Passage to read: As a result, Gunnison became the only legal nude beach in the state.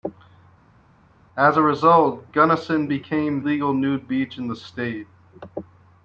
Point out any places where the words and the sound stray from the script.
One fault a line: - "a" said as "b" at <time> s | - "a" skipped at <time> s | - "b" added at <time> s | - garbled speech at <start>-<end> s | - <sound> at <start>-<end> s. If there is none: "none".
- "the only" skipped at 3.4 s